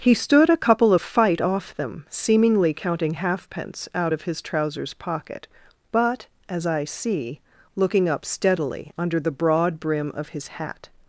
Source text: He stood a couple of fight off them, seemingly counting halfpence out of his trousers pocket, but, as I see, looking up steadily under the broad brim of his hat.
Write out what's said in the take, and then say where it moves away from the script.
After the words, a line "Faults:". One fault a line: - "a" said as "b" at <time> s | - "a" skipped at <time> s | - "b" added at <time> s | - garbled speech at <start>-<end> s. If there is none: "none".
He stood a couple of fight off them, seemingly counting halfpence out of his trousers pocket, but, as I see, looking up steadily under the broad brim of his hat.
Faults:
none